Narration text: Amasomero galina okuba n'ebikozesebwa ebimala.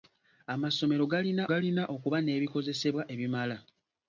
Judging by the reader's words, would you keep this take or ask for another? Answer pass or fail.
fail